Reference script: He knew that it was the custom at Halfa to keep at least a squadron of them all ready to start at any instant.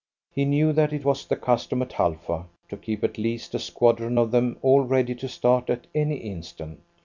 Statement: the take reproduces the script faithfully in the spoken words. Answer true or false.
true